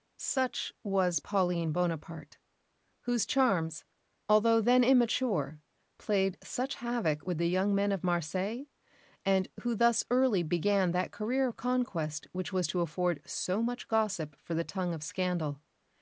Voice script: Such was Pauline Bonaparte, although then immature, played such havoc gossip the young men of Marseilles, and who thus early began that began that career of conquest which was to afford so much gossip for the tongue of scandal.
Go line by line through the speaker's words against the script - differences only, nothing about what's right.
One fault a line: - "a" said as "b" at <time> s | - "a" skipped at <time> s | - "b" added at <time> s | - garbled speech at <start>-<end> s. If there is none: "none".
- "whose charms" added at 3.0 s
- "gossip" said as "with" at 7.3 s
- "began that" skipped at 11.1 s